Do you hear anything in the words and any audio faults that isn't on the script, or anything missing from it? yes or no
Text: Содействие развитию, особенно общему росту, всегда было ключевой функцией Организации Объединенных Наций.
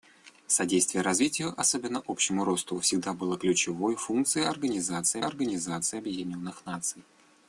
yes